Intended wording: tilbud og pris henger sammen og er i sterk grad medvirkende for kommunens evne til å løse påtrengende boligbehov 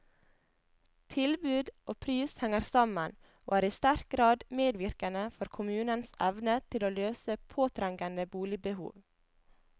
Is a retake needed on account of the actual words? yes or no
no